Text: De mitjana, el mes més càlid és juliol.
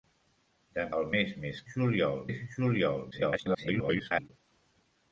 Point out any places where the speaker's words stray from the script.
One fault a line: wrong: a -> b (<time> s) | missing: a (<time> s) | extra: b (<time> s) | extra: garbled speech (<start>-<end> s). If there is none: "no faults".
missing: mitjana (0.8 s)
wrong: càlid -> juliol (1.7 s)
extra: garbled speech (3.1-4.3 s)